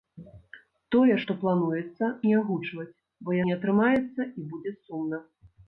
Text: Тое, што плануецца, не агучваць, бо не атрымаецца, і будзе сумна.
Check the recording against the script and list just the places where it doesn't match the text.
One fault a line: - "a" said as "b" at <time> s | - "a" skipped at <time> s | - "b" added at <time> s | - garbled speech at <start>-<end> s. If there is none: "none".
none